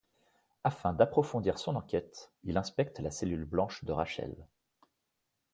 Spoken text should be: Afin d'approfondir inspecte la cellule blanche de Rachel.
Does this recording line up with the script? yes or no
no